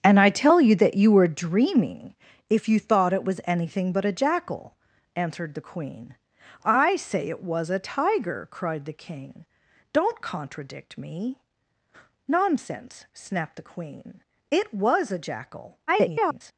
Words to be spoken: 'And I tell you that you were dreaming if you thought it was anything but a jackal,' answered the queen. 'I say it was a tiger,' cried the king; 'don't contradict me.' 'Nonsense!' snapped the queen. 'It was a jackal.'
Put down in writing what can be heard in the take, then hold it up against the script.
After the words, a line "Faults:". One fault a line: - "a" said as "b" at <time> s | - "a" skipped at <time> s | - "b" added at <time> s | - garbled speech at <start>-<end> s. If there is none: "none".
'And I tell you that you were dreaming if you thought it was anything but a jackal,' answered the queen. 'I say it was a tiger,' cried the king; 'don't contradict me.' 'Nonsense!' snapped the queen. 'It was a jackal.' [garbled]
Faults:
- garbled speech at 15.9-16.5 s